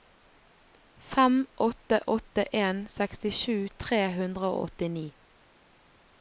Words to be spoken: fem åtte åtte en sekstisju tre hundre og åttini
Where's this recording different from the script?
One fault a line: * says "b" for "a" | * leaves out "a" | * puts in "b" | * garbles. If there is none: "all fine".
all fine